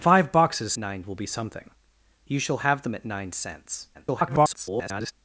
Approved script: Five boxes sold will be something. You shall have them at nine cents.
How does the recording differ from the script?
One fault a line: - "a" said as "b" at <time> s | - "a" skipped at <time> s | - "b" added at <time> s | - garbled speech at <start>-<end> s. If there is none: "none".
- "sold" said as "nine" at 0.8 s
- garbled speech at 3.9-5.1 s